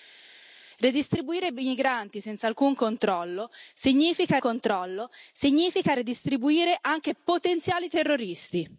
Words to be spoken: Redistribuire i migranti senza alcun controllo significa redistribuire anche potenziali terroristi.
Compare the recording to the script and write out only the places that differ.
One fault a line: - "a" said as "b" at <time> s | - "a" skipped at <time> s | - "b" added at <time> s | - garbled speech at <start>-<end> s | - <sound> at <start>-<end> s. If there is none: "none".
- "controllo significa" added at 4.4 s